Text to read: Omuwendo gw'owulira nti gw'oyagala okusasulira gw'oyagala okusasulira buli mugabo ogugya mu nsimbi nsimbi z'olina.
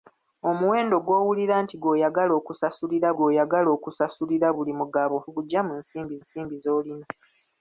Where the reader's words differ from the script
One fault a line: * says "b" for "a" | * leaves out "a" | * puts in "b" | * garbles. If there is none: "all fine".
all fine